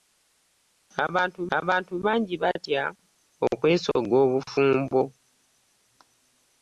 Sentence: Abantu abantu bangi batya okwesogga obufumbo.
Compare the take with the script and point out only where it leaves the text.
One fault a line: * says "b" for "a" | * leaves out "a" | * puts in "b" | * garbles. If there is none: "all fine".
all fine